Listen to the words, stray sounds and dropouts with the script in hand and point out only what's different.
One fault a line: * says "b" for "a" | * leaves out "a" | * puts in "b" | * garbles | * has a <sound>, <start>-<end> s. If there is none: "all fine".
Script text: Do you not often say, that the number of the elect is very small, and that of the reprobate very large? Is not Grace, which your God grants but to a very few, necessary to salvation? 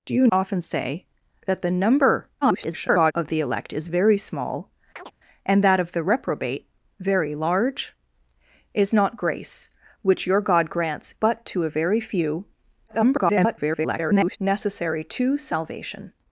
* leaves out "not"
* garbles
* has a chirp, 5.0-5.1 s
* garbles